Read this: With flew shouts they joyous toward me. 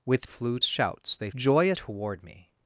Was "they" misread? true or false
false